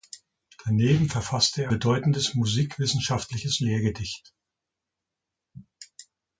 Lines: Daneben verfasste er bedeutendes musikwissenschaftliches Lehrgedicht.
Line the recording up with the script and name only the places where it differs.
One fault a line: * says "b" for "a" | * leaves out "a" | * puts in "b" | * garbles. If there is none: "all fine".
all fine